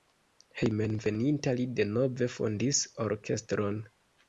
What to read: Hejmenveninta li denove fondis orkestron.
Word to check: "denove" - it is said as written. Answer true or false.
true